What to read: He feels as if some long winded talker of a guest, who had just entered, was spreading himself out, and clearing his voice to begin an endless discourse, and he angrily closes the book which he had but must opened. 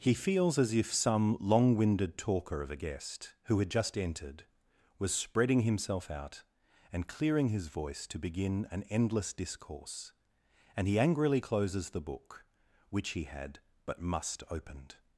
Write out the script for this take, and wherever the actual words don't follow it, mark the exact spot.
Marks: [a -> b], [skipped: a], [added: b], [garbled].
He feels as if some long winded talker of a guest, who had just entered, was spreading himself out, and clearing his voice to begin an endless discourse, and he angrily closes the book which he had but must opened.